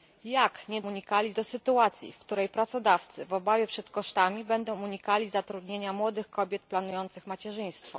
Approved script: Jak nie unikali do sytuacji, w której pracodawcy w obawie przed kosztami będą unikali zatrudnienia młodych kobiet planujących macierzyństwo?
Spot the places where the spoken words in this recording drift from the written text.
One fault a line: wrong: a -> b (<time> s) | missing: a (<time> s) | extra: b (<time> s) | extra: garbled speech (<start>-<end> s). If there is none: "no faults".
no faults